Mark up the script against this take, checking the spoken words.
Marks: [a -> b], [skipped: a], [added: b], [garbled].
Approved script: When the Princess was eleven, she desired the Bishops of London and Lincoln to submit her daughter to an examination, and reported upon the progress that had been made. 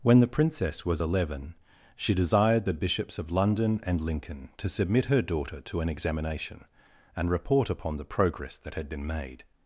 When the Princess was eleven, she desired the Bishops of London and Lincoln to submit her daughter to an examination, and [reported -> report] upon the progress that had been made.